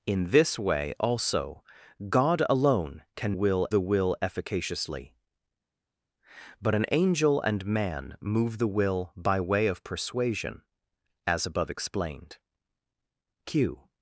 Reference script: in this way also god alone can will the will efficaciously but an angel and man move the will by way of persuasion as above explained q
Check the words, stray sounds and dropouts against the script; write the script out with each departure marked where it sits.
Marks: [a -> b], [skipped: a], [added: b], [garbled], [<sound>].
in this way also god alone can will the will efficaciously but an angel and man move the will by way of persuasion as above explained q